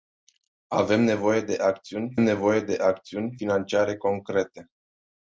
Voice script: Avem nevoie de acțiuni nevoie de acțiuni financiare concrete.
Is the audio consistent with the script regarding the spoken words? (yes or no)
yes